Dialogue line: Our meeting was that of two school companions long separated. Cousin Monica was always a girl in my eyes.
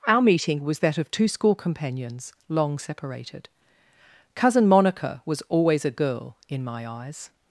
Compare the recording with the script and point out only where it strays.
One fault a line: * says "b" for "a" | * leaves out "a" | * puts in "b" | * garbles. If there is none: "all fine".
all fine